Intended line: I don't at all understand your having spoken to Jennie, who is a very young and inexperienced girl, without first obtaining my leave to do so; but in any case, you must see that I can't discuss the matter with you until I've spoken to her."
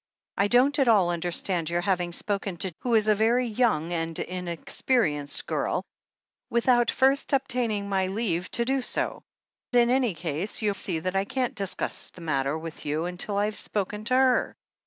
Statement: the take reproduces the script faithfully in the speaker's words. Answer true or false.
false